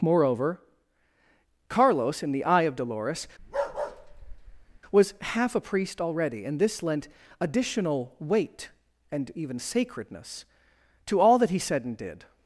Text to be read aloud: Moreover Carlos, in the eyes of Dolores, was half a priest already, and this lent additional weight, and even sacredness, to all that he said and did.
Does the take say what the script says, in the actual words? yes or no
no